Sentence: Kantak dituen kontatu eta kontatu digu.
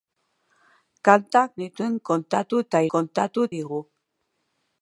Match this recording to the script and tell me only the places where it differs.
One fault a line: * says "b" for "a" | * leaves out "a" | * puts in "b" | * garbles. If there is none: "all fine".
all fine